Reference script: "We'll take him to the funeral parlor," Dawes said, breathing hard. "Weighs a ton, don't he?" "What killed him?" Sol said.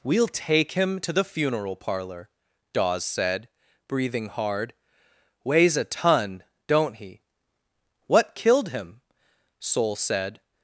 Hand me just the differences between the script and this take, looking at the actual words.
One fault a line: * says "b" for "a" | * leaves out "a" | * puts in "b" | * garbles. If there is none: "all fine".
all fine